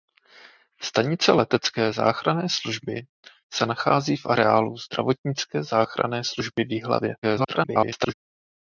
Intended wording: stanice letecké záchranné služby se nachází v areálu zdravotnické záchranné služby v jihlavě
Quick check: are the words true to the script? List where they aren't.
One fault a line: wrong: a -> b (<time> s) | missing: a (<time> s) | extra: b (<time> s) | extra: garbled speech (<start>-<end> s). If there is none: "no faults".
extra: garbled speech (7.2-8.1 s)